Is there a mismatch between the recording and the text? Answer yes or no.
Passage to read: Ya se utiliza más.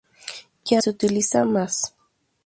no